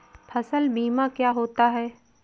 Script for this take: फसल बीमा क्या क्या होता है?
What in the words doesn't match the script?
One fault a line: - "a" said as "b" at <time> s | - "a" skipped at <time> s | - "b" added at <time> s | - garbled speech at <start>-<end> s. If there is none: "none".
- "क्या" skipped at 1.3 s